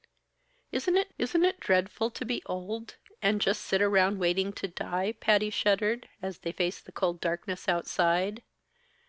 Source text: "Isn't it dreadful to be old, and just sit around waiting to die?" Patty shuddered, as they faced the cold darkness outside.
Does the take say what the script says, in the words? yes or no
no